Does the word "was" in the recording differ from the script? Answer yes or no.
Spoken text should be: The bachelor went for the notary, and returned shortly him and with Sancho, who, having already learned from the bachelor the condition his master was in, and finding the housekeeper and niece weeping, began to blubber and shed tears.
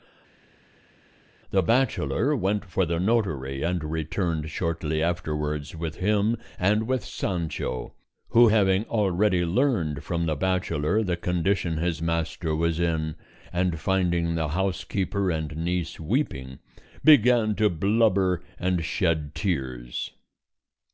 no